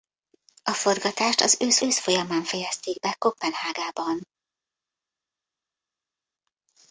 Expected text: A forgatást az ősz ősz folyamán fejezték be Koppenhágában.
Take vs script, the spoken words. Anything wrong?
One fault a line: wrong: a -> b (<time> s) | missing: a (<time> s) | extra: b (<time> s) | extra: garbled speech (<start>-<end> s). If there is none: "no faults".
no faults